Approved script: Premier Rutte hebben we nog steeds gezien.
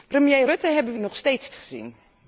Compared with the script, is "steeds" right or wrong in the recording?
right